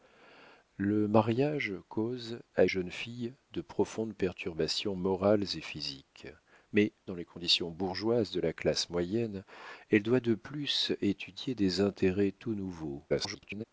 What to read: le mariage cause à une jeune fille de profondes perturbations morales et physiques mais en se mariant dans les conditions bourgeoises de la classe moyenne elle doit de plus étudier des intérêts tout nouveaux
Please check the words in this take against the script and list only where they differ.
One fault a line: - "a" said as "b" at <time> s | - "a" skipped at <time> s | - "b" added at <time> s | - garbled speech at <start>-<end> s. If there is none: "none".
- "une" skipped at 2.6 s
- "en se mariant" skipped at 6.9 s
- garbled speech at 13.1-13.6 s